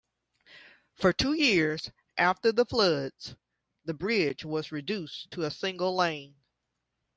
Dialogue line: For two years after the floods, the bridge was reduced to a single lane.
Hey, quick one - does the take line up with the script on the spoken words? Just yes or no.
yes